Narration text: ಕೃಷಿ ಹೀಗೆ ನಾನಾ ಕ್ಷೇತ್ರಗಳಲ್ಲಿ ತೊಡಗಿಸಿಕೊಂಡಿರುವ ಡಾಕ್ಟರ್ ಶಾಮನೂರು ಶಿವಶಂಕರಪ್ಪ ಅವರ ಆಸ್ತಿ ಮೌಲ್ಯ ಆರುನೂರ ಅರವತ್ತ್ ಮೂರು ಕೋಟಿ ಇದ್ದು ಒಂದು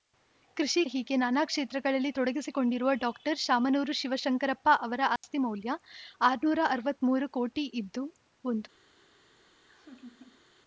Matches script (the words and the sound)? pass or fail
fail